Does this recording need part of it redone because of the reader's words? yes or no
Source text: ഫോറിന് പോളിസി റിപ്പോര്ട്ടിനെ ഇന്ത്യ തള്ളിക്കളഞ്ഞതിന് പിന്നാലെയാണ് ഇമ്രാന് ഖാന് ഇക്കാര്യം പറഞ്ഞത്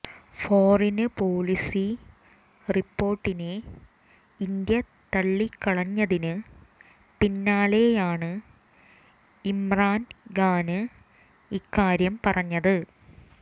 no